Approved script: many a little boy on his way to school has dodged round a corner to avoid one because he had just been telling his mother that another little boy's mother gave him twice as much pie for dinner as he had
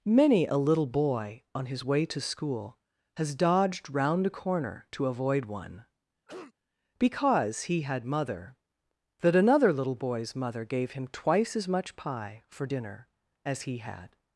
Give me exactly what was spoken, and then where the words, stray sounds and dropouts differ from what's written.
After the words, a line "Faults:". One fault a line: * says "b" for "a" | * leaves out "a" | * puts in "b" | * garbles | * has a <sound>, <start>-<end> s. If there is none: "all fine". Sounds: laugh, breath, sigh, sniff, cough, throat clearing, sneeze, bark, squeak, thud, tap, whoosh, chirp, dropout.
many a little boy on his way to school has dodged round a corner to avoid one because he had mother that another little boy's mother gave him twice as much pie for dinner as he had
Faults:
* has a cough, 6.3-6.5 s
* leaves out "just been telling his"